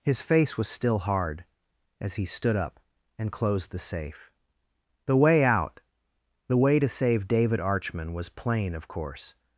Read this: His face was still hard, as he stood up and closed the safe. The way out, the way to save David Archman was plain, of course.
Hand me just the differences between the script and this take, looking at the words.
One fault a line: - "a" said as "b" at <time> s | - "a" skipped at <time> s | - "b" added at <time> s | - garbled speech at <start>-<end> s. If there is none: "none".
none